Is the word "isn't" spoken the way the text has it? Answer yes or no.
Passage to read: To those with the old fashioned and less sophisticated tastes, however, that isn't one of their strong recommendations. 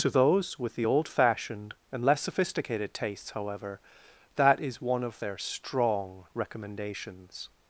no